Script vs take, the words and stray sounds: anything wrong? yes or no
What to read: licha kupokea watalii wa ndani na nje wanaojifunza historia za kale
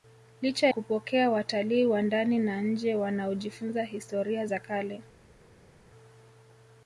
no